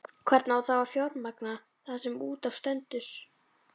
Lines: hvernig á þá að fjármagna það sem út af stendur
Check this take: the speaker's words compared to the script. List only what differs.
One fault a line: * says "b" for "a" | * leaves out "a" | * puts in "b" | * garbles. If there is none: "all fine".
all fine